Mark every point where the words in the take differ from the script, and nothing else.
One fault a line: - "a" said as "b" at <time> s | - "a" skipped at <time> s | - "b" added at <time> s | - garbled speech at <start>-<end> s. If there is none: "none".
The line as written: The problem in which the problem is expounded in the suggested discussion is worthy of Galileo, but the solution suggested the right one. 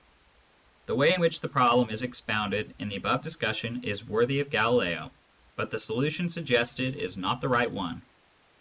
- "problem" said as "way" at 0.9 s
- "suggested" said as "above" at 3.0 s
- "is not" added at 7.0 s